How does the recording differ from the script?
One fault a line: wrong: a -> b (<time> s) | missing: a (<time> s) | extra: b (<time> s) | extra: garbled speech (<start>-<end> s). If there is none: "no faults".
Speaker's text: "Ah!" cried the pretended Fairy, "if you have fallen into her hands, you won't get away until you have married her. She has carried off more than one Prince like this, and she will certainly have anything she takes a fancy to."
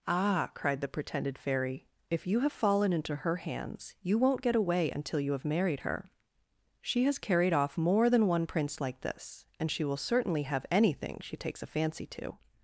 no faults